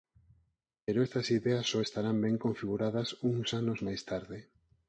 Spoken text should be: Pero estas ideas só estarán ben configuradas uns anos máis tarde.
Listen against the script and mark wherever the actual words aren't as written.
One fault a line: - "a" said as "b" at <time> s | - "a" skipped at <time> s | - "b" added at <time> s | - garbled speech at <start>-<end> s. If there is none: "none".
none